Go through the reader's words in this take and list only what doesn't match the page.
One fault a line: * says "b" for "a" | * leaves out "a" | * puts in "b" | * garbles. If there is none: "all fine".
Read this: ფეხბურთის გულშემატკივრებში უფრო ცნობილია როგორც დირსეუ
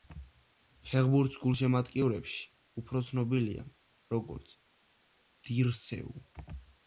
all fine